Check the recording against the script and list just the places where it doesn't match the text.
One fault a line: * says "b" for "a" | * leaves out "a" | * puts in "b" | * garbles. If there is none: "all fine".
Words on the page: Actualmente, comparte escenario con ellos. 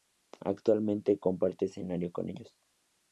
all fine